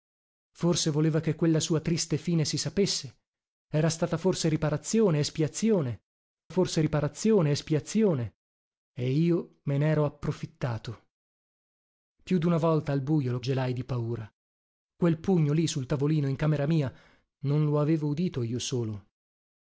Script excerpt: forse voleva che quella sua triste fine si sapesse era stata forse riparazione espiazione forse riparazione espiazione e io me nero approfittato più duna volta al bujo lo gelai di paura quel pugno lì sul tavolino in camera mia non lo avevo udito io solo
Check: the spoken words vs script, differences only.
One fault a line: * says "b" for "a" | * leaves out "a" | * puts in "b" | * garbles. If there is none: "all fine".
all fine